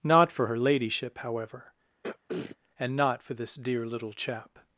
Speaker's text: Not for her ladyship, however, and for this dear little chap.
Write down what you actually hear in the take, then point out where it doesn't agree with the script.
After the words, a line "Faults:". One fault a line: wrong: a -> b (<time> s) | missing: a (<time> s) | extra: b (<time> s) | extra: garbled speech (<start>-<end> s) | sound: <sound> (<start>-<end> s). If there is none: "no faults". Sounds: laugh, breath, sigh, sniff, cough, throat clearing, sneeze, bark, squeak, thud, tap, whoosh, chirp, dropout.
Not for her ladyship, however, and not for this dear little chap.
Faults:
sound: throat clearing (2.0-2.6 s)
extra: not (3.0 s)